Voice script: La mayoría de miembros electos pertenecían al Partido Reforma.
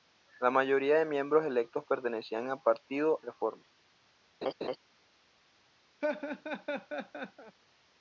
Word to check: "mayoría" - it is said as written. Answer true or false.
true